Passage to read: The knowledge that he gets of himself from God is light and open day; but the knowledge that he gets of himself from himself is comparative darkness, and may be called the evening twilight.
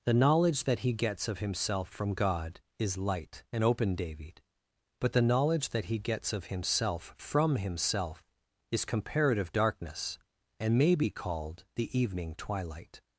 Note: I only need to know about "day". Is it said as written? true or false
false